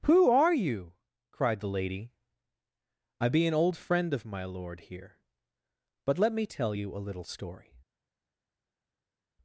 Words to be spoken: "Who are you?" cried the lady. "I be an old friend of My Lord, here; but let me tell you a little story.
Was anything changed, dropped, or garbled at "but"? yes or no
no